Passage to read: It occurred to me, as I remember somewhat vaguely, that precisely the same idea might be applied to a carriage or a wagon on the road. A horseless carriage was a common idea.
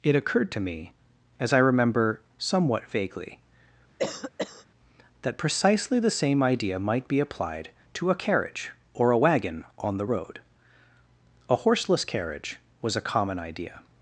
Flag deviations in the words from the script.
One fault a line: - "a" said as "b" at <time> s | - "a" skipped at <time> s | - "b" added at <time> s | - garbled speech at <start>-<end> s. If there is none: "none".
none